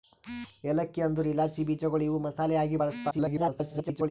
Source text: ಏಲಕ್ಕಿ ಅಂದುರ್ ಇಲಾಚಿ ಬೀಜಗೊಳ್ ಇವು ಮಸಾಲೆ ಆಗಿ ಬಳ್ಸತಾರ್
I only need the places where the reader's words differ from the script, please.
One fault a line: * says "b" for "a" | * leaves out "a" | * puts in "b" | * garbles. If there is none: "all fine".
* garbles